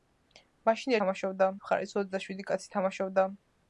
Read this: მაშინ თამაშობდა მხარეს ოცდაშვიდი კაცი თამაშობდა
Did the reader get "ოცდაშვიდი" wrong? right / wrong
right